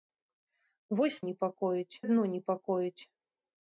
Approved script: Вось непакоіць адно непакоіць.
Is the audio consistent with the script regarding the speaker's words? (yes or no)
yes